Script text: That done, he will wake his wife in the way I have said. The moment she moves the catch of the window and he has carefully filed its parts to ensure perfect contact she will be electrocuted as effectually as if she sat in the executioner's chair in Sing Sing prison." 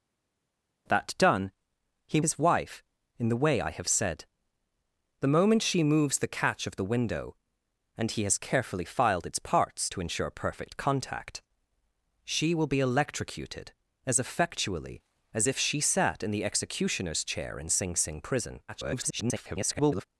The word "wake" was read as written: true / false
false